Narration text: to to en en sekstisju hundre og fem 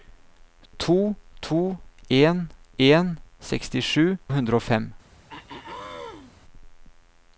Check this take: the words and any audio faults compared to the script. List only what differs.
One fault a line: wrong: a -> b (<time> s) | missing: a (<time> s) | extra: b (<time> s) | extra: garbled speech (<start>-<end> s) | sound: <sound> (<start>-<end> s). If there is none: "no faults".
sound: throat clearing (5.3-6.3 s)